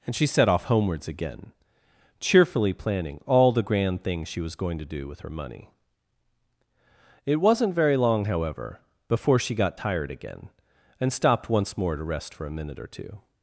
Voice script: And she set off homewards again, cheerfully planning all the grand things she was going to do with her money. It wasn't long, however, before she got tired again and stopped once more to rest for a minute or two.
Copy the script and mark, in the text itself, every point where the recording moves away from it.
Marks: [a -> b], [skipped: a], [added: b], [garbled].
And she set off homewards again, cheerfully planning all the grand things she was going to do with her money. It wasn't [added: very] long, however, before she got tired again and stopped once more to rest for a minute or two.